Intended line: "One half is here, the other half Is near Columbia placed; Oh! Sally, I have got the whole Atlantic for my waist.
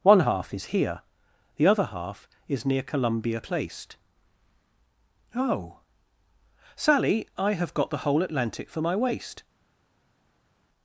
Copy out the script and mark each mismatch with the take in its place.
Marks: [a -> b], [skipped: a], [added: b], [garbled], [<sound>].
"One half is here, the other half Is near Columbia placed; Oh! Sally, I have got the whole Atlantic for my waist.